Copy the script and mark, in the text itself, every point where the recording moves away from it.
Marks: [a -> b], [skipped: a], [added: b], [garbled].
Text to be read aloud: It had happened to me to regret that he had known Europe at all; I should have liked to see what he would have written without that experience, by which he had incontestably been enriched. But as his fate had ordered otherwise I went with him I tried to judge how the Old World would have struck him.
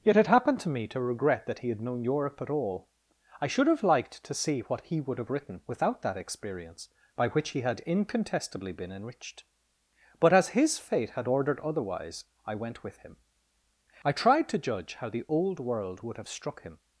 [added: yet] It [skipped: had] happened to me to regret that he had known Europe at all; I should have liked to see what he would have written without that experience, by which he had incontestably been enriched. But as his fate had ordered otherwise I went with him I tried to judge how the Old World would have struck him.